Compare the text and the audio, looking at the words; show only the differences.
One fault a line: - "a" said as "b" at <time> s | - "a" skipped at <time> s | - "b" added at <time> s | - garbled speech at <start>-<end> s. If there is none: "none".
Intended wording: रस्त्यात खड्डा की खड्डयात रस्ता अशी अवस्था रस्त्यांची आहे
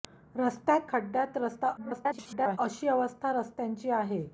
- "खड्डा की" skipped at 0.9 s
- garbled speech at 1.8-2.6 s